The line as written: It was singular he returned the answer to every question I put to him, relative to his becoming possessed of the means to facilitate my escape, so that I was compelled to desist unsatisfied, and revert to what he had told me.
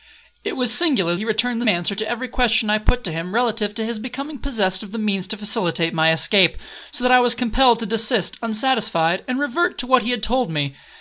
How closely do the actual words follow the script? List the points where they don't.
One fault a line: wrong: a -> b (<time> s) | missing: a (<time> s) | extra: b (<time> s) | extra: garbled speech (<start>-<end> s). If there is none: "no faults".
no faults